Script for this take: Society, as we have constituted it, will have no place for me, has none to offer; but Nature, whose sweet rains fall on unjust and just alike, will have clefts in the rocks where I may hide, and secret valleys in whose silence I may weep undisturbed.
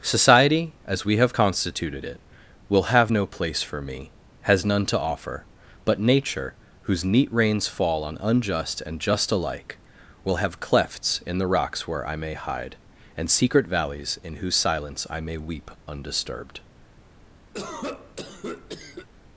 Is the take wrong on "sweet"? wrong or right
wrong